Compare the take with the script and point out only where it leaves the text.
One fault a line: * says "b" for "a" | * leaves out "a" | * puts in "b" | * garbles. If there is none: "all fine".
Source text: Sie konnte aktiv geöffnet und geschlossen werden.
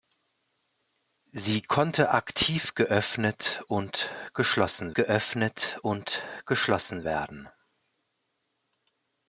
* puts in "geöffnet und geschlossen"